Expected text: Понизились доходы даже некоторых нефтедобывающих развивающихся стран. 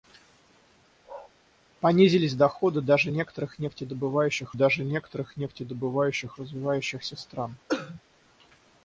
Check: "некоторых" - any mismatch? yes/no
no